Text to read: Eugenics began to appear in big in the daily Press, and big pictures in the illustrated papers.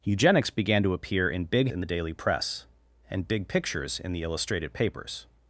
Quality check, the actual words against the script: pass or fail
pass